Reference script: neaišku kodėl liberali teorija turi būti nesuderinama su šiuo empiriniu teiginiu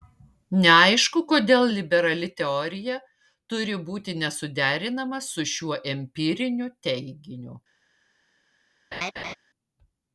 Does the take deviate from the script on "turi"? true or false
false